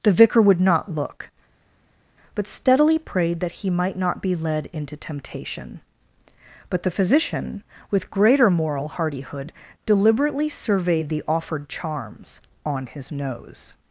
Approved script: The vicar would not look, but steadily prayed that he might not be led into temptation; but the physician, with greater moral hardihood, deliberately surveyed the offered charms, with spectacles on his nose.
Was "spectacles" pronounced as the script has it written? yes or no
no